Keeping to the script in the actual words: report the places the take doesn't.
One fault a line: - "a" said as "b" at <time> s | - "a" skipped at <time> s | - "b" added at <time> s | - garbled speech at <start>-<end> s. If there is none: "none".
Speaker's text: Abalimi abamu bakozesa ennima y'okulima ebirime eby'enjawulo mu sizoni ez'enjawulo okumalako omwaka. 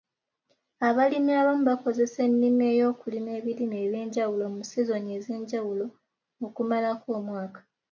none